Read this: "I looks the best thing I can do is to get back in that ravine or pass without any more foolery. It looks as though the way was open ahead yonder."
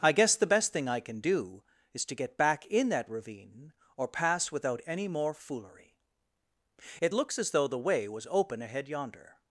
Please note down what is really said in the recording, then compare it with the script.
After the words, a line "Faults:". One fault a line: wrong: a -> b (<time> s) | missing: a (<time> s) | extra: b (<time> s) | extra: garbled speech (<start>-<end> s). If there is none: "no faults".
"I guess the best thing I can do is to get back in that ravine or pass without any more foolery. It looks as though the way was open ahead yonder."
Faults:
wrong: looks -> guess (0.1 s)